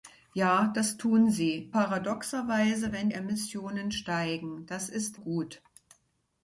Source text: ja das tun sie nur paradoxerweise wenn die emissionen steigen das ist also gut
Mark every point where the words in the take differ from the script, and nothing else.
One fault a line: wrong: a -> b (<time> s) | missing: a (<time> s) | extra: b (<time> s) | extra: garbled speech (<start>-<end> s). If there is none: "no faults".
missing: nur (1.7 s)
missing: die (3.1 s)
missing: also (5.2 s)